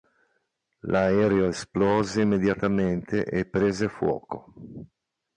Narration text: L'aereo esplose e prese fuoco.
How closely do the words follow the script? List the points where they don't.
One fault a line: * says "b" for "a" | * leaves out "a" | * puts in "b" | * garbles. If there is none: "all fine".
* puts in "immediatamente"